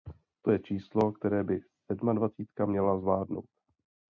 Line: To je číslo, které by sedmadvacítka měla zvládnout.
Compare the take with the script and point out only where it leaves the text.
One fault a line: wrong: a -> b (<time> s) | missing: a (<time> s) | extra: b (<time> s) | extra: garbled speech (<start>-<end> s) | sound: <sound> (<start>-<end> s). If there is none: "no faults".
no faults